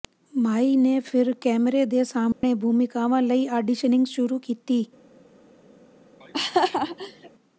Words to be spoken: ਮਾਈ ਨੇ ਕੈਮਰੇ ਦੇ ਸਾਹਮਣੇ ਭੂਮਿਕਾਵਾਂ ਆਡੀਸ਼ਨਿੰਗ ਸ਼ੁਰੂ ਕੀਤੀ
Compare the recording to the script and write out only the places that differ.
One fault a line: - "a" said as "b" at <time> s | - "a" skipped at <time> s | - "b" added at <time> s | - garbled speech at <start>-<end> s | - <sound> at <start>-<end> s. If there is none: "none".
- "ਫਿਰ" added at 1.0 s
- dropout at 2.3-2.4 s
- "ਲਈ" added at 3.2 s
- laugh at 6.2-7.3 s